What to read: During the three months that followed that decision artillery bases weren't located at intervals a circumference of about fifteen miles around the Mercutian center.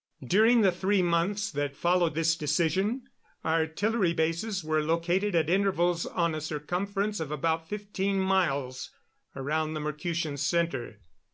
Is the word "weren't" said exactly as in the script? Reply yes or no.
no